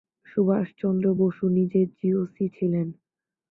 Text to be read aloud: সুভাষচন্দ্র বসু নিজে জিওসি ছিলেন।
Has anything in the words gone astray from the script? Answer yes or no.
no